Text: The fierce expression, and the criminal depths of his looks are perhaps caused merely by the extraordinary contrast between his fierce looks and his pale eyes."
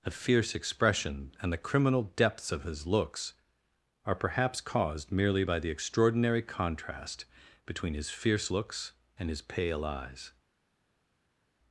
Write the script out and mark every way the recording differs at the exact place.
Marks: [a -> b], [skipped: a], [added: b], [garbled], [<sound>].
[The -> A] fierce expression, and the criminal depths of his looks are perhaps caused merely by the extraordinary contrast between his fierce looks and his pale eyes."